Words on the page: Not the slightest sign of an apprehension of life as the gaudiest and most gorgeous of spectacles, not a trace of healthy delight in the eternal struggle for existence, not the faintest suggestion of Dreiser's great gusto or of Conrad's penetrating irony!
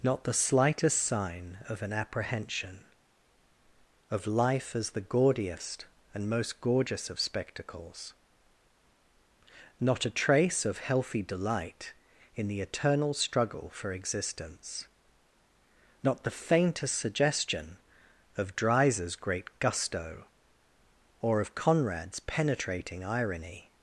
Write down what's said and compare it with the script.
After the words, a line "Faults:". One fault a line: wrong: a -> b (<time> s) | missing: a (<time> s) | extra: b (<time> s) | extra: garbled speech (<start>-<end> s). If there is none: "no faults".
Not the slightest sign of an apprehension of life as the gaudiest and most gorgeous of spectacles, not a trace of healthy delight in the eternal struggle for existence, not the faintest suggestion of Dreiser's great gusto or of Conrad's penetrating irony!
Faults:
no faults